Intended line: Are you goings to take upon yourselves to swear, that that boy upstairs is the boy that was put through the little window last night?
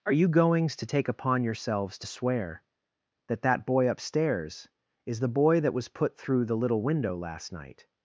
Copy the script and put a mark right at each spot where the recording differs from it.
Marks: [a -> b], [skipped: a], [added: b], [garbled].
Are you goings to take upon yourselves to swear, that that boy upstairs is the boy that was put through the little window last night?